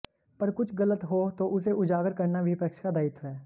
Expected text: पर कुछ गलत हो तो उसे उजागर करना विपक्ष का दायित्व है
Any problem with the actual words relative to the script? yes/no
no